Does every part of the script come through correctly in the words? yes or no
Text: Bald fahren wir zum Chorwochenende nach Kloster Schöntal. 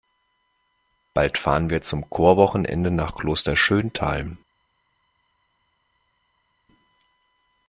yes